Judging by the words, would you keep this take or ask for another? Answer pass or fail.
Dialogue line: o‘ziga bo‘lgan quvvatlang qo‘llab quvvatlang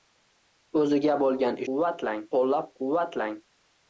pass